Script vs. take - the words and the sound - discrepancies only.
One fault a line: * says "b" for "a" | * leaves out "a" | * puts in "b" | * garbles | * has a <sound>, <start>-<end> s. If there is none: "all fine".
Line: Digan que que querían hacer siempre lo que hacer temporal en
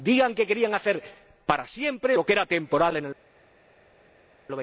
* leaves out "que"
* puts in "para"
* says "era" for "hacer"